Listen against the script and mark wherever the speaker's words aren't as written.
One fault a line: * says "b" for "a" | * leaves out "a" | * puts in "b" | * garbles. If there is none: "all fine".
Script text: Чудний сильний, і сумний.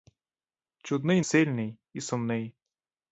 all fine